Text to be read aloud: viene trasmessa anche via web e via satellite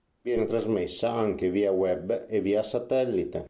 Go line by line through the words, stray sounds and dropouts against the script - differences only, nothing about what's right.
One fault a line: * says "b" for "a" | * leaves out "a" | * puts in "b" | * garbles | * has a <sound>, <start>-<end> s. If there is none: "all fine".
all fine